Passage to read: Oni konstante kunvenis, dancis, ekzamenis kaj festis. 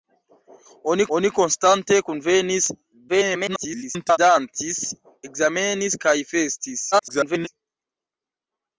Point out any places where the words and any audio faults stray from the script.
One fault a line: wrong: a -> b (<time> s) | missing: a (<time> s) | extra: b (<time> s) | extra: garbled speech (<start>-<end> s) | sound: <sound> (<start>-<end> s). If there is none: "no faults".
extra: oni (1.2 s)
extra: garbled speech (3.1-4.2 s)
extra: garbled speech (6.9-7.5 s)